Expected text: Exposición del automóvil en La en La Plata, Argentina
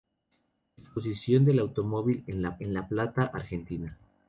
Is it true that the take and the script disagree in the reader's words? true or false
false